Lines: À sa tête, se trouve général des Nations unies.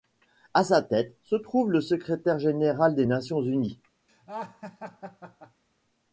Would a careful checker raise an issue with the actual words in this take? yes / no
yes